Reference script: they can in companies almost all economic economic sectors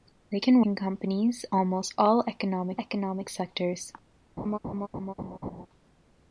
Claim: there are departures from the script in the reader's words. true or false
false